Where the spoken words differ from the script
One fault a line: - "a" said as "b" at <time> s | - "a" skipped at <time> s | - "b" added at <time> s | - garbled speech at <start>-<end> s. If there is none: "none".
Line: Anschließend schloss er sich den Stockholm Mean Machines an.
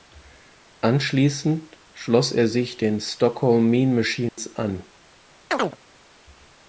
none